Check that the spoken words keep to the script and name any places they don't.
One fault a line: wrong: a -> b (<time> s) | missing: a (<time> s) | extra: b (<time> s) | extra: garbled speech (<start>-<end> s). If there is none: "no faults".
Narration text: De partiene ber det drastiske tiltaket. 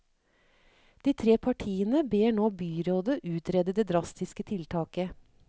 extra: tre (1.2 s)
extra: nå byrådet utrede (2.4 s)